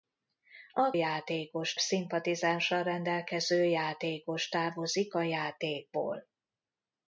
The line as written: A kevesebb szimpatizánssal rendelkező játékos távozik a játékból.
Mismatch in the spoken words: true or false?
true